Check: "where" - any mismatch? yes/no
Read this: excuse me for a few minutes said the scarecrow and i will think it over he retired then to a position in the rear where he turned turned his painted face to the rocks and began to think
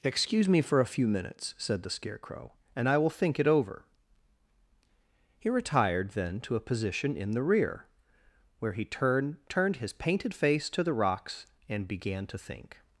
no